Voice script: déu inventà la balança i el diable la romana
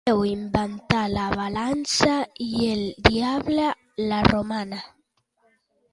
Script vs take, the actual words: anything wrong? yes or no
no